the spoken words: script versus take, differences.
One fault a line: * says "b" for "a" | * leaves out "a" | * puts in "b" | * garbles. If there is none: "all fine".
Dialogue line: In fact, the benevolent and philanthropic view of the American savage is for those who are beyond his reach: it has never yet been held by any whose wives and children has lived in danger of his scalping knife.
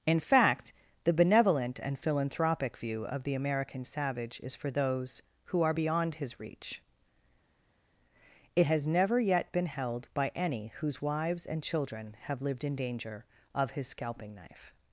* says "have" for "has"